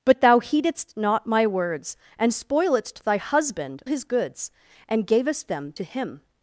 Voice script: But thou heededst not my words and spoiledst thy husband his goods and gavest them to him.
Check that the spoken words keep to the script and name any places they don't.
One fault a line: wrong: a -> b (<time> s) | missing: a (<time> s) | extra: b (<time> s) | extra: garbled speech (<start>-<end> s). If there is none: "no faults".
no faults